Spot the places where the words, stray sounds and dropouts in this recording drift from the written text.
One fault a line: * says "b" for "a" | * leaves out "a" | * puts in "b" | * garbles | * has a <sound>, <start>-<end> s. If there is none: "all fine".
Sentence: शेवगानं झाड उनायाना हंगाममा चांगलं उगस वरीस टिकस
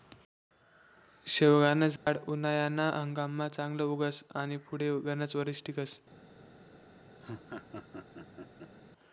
* has a dropout, 2.0-2.1 s
* puts in "आनी पुढे गनच"
* has a laugh, 7.2-8.7 s